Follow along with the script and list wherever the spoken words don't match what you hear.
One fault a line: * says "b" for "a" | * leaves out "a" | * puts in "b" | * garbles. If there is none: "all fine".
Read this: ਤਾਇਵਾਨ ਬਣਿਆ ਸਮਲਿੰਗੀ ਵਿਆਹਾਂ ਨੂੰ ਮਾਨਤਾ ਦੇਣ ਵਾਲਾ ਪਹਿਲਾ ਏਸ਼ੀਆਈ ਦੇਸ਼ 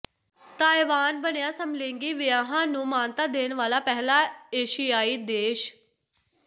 all fine